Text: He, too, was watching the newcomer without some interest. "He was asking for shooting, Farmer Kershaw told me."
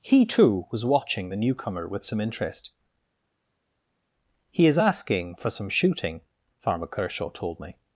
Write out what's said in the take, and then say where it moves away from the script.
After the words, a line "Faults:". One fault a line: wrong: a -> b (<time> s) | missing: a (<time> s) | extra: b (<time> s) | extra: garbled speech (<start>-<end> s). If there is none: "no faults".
He, too, was watching the newcomer with some interest. "He is asking for some shooting, Farmer Kershaw told me."
Faults:
wrong: without -> with (1.9 s)
wrong: was -> is (4.7 s)
extra: some (5.5 s)